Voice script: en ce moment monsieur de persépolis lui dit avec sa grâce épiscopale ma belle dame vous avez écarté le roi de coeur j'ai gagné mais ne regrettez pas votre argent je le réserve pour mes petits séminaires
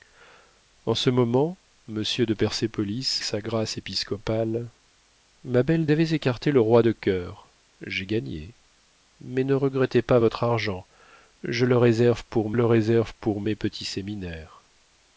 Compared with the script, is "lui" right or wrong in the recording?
wrong